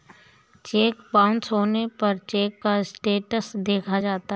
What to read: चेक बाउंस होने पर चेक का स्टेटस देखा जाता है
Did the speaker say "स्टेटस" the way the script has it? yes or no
yes